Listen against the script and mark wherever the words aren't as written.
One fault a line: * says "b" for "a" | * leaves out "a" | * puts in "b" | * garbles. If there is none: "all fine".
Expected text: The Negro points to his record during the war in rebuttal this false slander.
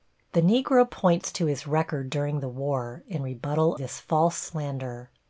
all fine